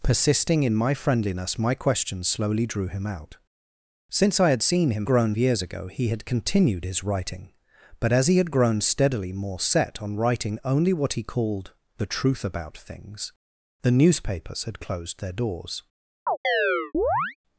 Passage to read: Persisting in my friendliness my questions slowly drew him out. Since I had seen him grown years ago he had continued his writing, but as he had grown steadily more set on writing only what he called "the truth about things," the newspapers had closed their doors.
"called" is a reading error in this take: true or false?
false